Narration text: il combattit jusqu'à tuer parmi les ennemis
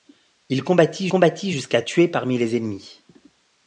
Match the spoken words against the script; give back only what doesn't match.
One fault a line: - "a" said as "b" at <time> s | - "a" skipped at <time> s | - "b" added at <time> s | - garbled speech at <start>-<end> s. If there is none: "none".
- "combattit" added at 1.1 s